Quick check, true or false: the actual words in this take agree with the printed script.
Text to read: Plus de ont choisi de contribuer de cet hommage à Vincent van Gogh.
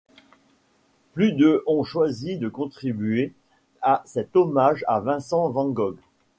false